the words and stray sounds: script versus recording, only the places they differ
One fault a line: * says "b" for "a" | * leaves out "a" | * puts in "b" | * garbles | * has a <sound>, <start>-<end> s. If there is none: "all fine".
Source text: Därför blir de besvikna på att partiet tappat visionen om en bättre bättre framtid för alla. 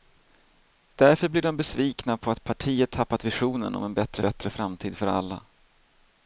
all fine